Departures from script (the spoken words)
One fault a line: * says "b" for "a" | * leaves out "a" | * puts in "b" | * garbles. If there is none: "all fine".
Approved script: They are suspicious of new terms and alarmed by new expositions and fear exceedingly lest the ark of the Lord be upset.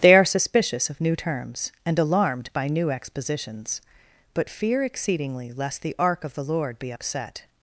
* says "but" for "and"